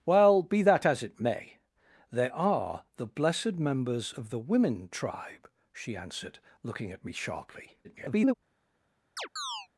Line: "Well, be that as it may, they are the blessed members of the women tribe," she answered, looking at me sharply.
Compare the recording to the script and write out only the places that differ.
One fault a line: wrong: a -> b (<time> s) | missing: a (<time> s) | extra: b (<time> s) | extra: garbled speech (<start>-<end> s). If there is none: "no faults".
extra: garbled speech (7.8-8.3 s)